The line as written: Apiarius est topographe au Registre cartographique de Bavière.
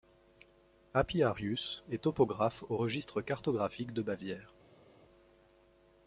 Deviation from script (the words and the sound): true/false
false